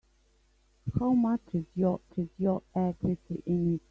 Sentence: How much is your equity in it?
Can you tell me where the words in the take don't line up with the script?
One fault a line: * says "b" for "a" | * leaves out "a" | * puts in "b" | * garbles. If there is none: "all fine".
* puts in "is your"